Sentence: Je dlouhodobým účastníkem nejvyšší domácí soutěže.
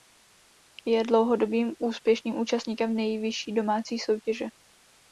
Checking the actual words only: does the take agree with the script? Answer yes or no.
no